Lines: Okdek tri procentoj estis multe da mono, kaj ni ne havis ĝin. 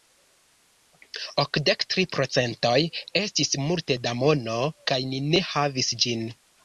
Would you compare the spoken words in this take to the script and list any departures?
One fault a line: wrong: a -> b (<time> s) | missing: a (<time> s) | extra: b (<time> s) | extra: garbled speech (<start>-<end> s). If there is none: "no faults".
no faults